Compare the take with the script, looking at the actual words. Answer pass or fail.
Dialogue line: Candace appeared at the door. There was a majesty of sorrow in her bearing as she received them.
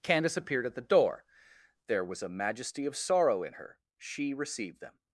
fail